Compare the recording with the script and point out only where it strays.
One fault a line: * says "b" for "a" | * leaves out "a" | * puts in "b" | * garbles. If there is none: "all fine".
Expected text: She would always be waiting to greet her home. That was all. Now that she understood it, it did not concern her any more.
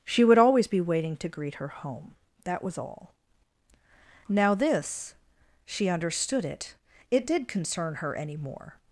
* says "this" for "that"
* leaves out "not"